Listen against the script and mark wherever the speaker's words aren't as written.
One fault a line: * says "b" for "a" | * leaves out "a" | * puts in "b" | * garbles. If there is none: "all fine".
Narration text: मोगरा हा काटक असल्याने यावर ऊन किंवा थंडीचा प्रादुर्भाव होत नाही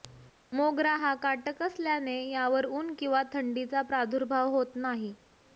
all fine